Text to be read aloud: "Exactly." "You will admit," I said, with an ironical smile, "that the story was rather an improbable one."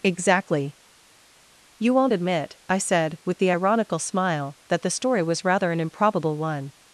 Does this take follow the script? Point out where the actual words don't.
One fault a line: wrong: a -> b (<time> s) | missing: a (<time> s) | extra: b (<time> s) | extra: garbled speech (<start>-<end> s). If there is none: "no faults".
wrong: will -> won't (1.9 s)
wrong: an -> the (3.4 s)